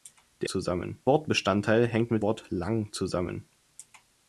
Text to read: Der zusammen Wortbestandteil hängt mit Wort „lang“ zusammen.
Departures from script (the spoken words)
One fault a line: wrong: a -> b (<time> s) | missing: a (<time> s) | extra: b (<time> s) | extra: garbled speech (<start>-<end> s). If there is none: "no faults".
no faults